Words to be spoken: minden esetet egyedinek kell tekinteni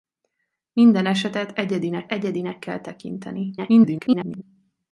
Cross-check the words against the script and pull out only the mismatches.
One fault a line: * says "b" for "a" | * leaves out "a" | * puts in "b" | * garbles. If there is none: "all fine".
* puts in "egyedinek"
* garbles